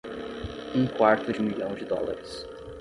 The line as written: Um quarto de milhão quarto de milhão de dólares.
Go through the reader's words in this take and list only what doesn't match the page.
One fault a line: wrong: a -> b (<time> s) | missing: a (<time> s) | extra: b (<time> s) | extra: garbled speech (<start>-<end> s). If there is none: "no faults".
missing: quarto de milhão (1.7 s)